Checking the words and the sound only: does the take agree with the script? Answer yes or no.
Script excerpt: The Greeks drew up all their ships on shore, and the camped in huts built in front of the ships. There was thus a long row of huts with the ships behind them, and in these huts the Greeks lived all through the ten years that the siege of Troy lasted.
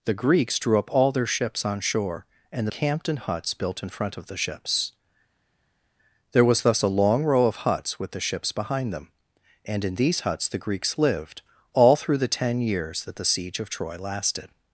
yes